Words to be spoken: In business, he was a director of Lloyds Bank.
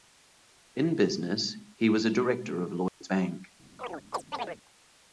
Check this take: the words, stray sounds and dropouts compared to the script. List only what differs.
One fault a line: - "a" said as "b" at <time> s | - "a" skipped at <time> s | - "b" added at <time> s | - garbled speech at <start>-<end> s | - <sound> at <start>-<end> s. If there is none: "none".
- dropout at 2.9-3.0 s
- chirp at 3.8-4.6 s